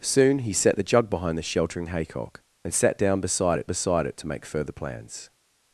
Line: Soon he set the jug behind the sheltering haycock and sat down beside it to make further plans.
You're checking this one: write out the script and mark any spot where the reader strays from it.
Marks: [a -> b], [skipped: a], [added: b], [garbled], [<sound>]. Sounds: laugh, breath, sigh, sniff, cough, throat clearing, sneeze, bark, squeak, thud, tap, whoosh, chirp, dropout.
Soon he set the jug behind the sheltering haycock and sat down beside it [added: beside it] to make further plans.